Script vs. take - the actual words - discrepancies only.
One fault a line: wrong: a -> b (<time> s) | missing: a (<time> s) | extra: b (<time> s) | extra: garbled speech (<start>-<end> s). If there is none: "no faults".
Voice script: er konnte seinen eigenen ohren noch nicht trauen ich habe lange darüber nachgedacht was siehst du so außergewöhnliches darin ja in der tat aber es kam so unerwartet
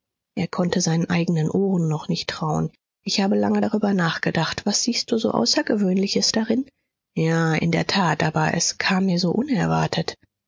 extra: mir (9.1 s)